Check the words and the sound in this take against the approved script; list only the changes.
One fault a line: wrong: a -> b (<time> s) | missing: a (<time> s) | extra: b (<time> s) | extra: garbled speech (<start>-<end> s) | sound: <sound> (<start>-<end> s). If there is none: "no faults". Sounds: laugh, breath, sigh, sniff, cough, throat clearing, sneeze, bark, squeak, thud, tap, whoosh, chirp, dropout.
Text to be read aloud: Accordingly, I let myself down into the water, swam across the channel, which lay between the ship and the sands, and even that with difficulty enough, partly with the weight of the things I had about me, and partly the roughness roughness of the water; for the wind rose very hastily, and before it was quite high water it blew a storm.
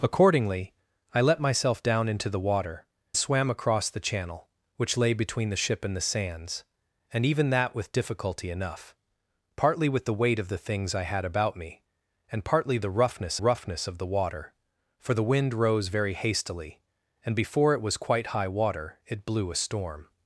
no faults